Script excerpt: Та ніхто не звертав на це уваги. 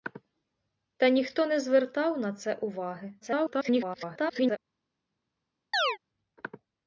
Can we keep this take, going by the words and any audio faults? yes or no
no